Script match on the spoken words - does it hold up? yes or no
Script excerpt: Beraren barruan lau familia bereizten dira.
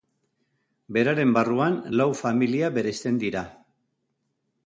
yes